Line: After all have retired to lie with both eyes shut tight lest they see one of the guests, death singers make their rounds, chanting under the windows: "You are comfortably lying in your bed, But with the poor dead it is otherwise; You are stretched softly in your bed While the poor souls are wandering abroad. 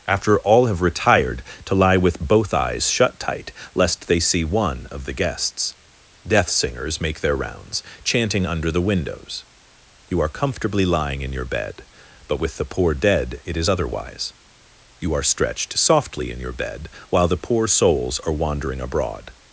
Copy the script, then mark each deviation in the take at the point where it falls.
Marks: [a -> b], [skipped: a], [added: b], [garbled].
After all have retired to lie with both eyes shut tight lest they see one of the guests, death singers make their rounds, chanting under the windows: "You are comfortably lying in your bed, But with the poor dead it is otherwise; You are stretched softly in your bed While the poor souls are wandering abroad.